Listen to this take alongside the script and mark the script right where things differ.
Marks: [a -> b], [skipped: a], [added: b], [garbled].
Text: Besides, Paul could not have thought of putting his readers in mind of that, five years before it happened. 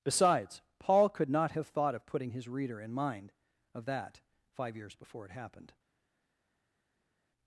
Besides, Paul could not have thought of putting his [readers -> reader] in mind of that, five years before it happened.